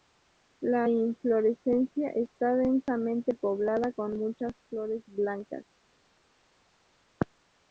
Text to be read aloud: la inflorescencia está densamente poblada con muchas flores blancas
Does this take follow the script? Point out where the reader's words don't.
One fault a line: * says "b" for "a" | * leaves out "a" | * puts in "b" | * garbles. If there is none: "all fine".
all fine